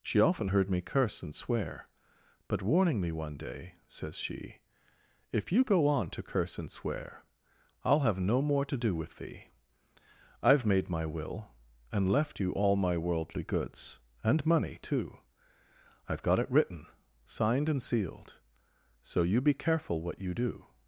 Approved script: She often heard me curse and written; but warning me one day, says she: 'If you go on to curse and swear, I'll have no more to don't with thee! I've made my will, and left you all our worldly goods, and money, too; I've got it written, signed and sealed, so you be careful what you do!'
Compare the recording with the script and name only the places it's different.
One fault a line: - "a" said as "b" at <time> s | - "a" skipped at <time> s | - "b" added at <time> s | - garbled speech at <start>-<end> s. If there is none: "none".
- "written" said as "swear" at 1.3 s
- "don't" said as "do" at 8.8 s
- "our" said as "my" at 12.8 s